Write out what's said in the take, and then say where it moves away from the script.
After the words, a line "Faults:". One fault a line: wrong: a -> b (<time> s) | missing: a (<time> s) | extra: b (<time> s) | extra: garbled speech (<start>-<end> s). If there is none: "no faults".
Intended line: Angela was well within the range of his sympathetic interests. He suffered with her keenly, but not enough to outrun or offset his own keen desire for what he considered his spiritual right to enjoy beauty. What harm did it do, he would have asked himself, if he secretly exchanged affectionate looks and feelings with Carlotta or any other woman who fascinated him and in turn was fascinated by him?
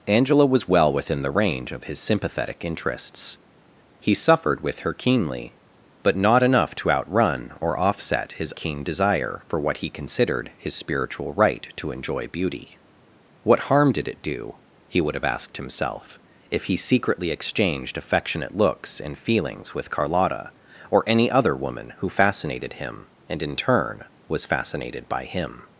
Angela was well within the range of his sympathetic interests. He suffered with her keenly, but not enough to outrun or offset his keen desire for what he considered his spiritual right to enjoy beauty. What harm did it do, he would have asked himself, if he secretly exchanged affectionate looks and feelings with Carlotta or any other woman who fascinated him and in turn was fascinated by him?
Faults:
missing: own (8.5 s)